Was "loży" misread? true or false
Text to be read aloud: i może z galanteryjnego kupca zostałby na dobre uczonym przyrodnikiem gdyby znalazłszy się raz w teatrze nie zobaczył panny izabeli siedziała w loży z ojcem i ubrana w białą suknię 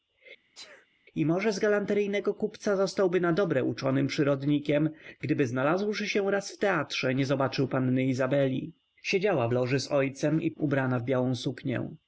false